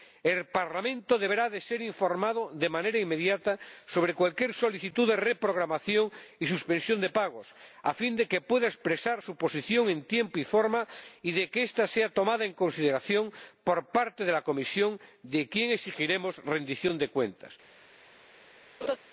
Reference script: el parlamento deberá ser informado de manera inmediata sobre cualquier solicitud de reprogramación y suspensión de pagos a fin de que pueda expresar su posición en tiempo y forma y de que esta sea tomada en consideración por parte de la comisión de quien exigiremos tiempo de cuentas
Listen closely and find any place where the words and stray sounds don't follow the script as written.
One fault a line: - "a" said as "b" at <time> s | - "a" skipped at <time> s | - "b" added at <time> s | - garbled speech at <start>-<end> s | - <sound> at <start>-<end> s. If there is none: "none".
- "tiempo" said as "rendición" at 16.4 s
- laugh at 18.8-19.0 s